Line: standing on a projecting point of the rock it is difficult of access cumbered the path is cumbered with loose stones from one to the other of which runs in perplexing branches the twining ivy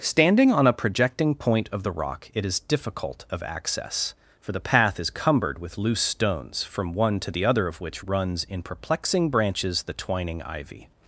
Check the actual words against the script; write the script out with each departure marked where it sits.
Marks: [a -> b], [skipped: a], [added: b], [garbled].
standing on a projecting point of the rock it is difficult of access [cumbered -> for] the path is cumbered with loose stones from one to the other of which runs in perplexing branches the twining ivy